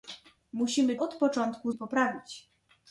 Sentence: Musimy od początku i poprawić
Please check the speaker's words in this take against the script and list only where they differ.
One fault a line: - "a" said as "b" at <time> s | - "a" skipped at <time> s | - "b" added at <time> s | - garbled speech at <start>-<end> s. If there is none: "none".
none